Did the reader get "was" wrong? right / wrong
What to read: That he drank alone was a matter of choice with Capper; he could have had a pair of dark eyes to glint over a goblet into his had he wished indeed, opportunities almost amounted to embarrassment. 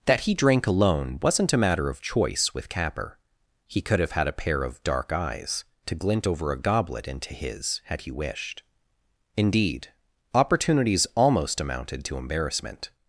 wrong